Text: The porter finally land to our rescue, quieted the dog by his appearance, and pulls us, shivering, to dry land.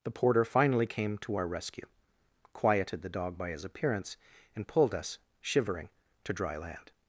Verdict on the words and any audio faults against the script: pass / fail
fail